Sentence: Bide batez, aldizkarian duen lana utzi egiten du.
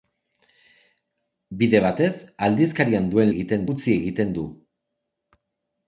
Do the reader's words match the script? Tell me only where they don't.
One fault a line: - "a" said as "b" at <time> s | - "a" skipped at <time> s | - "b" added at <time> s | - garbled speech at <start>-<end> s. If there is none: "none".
- "lana" said as "egiten" at 3.3 s